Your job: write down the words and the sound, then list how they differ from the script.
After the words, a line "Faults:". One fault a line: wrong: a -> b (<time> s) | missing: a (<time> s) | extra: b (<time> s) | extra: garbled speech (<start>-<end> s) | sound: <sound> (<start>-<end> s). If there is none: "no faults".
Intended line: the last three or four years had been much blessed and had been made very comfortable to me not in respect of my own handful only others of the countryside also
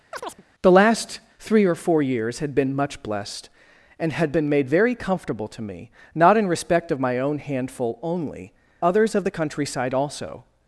the last three or four years had been much blessed and had been made very comfortable to me not in respect of my own handful only others of the countryside also
Faults:
sound: chirp (0.1-0.4 s)